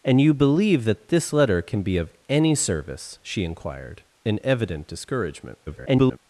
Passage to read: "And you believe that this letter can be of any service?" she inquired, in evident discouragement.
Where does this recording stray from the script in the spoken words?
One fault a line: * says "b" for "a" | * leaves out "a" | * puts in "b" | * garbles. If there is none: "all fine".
* garbles